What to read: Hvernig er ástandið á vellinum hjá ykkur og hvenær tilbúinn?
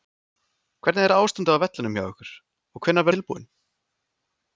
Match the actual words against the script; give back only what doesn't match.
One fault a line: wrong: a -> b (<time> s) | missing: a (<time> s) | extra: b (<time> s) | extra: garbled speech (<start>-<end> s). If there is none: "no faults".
no faults